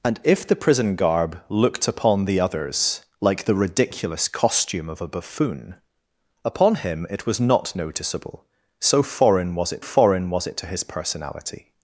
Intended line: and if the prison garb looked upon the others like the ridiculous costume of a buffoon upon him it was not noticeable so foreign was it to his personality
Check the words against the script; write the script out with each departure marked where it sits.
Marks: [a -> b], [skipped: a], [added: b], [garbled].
and if the prison garb looked upon the others like the ridiculous costume of a buffoon upon him it was not noticeable so foreign was it [added: foreign was it] to his personality